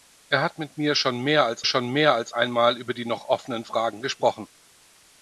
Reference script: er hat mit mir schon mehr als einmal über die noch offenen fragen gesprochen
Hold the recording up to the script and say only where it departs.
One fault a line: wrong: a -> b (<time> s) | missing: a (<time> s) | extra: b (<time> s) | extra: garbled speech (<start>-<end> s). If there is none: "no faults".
extra: schon mehr als (1.6 s)